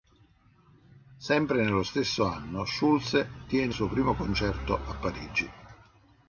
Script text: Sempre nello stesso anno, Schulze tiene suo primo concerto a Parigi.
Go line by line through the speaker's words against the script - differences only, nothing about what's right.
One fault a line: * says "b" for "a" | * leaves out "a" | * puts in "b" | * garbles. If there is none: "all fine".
all fine